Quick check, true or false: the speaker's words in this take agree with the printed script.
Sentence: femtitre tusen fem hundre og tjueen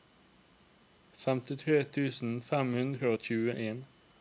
true